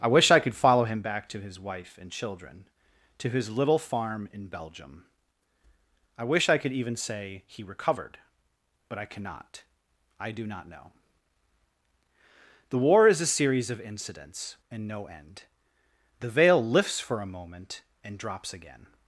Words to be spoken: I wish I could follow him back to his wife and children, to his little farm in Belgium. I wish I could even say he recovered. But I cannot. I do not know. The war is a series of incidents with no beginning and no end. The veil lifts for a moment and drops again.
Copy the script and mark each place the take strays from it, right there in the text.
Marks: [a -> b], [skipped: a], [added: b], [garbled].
I wish I could follow him back to his wife and children, to his little farm in Belgium. I wish I could even say he recovered. But I cannot. I do not know. The war is a series of incidents [skipped: with no beginning] and no end. The veil lifts for a moment and drops again.